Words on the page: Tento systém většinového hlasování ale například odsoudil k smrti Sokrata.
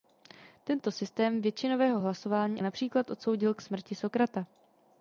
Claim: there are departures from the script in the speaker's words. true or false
true